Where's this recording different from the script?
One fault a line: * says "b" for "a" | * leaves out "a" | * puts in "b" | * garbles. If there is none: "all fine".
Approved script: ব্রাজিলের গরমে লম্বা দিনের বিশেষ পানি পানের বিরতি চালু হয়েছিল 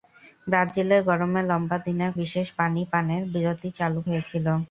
all fine